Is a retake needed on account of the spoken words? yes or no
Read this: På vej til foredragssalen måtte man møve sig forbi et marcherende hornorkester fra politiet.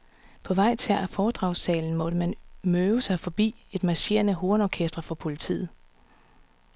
no